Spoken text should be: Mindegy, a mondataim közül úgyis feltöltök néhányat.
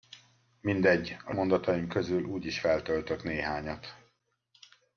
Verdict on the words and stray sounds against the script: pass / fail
pass